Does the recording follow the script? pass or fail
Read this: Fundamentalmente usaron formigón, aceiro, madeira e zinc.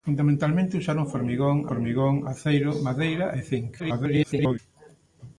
fail